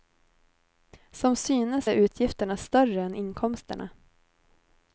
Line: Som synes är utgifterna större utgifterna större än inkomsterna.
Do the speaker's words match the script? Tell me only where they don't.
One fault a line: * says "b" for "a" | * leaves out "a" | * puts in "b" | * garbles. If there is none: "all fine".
* leaves out "utgifterna större"